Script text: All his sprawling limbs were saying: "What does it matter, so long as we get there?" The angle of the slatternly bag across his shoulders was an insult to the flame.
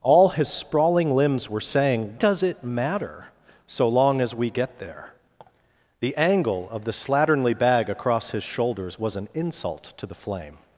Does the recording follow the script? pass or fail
fail